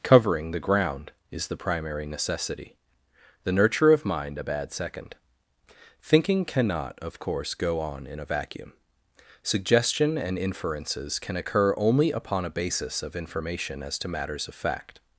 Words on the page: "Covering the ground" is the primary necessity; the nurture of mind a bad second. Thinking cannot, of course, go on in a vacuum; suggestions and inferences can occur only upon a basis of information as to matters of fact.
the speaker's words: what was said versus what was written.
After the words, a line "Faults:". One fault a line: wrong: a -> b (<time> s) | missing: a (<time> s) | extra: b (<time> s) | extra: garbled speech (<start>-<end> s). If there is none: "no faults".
"Covering the ground" is the primary necessity; the nurture of mind a bad second. Thinking cannot, of course, go on in a vacuum; suggestion and inferences can occur only upon a basis of information as to matters of fact.
Faults:
wrong: suggestions -> suggestion (9.4 s)